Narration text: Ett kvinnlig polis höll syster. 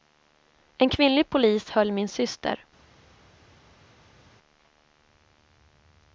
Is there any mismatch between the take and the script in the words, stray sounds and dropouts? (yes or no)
yes